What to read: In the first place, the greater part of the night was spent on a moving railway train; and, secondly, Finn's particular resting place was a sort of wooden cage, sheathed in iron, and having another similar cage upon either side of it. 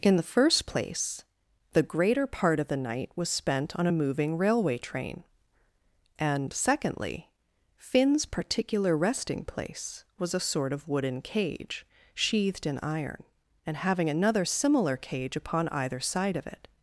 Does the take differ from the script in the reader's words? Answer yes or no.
no